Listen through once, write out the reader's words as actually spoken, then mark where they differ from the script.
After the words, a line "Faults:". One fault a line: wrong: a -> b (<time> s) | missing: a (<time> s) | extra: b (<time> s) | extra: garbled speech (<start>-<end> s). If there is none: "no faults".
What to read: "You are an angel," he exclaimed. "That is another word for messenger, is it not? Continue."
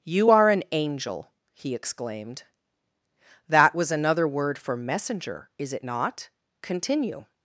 "You are an angel," he exclaimed. "That was another word for messenger, is it not? Continue."
Faults:
wrong: is -> was (3.7 s)